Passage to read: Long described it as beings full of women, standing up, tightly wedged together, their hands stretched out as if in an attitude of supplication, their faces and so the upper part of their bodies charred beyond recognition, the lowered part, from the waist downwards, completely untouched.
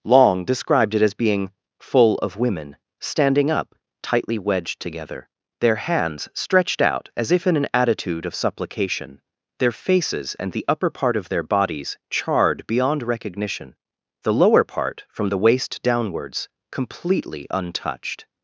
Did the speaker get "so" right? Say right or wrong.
wrong